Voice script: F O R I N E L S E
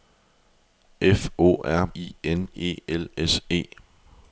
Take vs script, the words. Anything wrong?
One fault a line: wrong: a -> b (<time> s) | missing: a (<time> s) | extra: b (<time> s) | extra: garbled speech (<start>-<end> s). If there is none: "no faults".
no faults